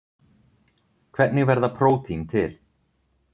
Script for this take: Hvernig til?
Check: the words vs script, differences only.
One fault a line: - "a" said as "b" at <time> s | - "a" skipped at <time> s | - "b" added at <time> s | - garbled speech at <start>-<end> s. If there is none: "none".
- "verða prótín" added at 1.5 s